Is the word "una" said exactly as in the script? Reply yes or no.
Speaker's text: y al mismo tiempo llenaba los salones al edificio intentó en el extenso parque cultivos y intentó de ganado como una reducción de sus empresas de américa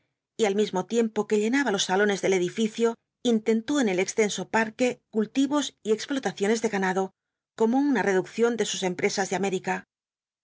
yes